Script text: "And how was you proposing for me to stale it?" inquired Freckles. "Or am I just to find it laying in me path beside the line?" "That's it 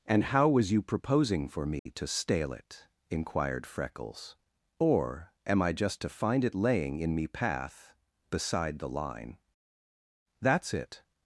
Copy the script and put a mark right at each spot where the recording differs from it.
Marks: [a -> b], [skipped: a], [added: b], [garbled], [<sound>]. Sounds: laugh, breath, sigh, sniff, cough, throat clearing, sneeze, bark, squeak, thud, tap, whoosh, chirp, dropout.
"And how was you proposing for me [dropout] to stale it?" inquired Freckles. "Or am I just to find it laying in me path beside the line?" "That's it